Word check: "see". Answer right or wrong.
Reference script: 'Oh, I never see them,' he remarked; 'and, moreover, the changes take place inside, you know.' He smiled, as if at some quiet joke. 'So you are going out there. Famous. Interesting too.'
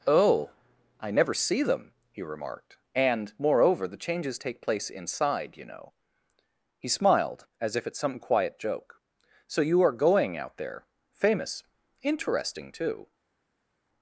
right